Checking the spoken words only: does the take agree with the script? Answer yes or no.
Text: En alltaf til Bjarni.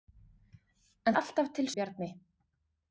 yes